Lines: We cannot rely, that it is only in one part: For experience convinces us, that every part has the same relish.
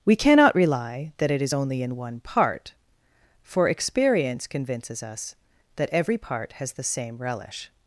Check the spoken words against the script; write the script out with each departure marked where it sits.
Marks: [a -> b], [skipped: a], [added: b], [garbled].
We cannot rely, that it is only in one part: For experience convinces us, that every part has the same relish.